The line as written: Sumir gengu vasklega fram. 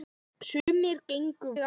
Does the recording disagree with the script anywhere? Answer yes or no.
yes